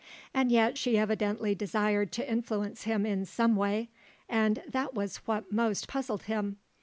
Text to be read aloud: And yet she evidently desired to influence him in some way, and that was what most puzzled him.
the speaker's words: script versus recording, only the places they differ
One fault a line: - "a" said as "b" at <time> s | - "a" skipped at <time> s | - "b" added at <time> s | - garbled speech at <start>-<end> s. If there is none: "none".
none